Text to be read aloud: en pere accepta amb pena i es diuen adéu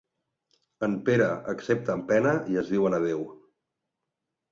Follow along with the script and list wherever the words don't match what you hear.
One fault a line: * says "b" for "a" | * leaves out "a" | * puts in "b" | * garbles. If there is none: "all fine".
all fine